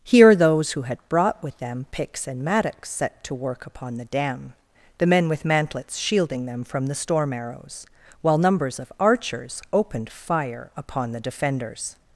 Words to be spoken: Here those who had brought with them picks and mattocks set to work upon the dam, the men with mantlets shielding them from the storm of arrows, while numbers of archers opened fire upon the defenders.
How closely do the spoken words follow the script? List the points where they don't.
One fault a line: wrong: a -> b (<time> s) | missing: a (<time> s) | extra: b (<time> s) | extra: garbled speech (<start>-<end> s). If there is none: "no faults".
missing: of (7.3 s)